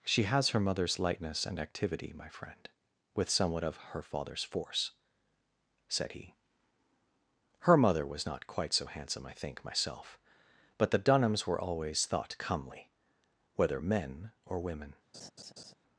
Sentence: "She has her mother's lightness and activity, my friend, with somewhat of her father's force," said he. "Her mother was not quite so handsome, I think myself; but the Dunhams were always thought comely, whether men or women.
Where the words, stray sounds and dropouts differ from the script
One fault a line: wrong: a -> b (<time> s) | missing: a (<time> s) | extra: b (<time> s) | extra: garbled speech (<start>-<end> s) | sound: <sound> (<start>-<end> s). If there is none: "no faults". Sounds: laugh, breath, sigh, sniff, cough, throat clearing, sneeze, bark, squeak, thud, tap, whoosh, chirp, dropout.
sound: laugh (15.1-15.7 s)